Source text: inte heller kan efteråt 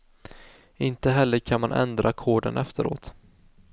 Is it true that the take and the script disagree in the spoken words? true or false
true